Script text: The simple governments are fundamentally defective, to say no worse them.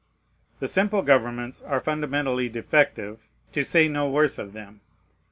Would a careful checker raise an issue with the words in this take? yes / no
yes